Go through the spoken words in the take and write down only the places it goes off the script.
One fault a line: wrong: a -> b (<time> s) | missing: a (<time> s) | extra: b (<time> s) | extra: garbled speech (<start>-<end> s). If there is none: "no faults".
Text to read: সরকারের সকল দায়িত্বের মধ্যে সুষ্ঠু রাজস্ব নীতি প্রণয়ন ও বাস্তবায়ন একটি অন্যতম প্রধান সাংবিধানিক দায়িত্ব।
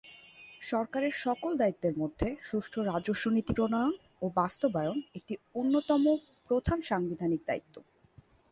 no faults